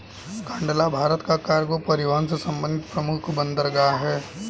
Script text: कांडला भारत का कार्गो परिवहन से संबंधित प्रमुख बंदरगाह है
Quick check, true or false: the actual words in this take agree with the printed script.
true